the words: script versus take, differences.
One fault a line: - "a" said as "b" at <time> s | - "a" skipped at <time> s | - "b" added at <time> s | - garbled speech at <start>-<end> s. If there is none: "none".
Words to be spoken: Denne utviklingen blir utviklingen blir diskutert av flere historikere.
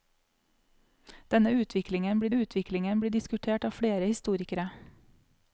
none